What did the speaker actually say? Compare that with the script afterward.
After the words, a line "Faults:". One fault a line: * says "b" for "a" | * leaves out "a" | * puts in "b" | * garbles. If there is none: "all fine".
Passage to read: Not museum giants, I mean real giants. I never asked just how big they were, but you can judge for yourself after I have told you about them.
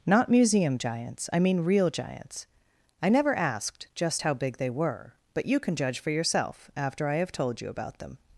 Not museum giants, I mean real giants. I never asked just how big they were, but you can judge for yourself after I have told you about them.
Faults:
all fine